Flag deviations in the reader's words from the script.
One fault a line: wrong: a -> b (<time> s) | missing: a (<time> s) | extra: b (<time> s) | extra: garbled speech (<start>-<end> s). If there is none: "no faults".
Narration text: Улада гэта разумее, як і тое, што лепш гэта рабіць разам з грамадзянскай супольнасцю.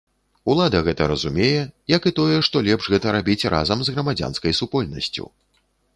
no faults